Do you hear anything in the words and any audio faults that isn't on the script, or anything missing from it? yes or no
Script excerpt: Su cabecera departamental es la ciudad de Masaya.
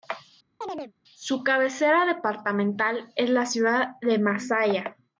yes